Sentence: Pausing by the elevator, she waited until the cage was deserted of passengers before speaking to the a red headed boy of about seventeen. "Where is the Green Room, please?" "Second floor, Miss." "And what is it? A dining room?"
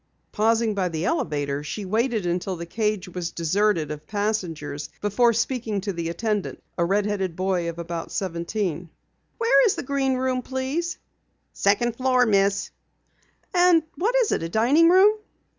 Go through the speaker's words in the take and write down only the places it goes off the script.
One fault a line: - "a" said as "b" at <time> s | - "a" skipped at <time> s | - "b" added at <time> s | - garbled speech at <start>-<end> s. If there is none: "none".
- "attendant" added at 6.1 s